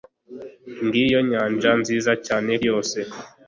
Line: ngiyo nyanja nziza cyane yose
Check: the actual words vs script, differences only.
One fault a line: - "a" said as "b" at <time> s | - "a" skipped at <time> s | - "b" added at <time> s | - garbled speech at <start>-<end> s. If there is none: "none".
none